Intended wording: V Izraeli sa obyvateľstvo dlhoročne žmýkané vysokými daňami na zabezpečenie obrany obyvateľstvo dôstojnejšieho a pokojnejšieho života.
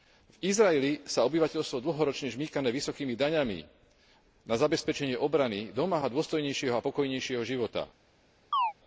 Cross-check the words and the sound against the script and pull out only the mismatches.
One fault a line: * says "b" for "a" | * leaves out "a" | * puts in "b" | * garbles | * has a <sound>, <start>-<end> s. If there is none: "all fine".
* says "domáha" for "obyvateľstvo"
* has a chirp, 8.5-8.7 s